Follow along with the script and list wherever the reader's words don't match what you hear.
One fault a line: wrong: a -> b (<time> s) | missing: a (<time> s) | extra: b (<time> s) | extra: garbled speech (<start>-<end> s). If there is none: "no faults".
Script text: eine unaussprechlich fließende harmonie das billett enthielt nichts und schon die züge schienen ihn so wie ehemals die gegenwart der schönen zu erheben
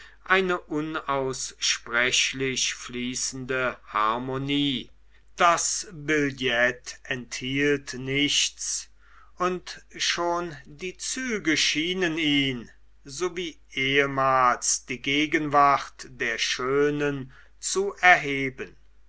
no faults